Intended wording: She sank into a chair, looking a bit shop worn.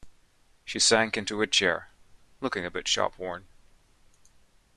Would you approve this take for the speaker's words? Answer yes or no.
yes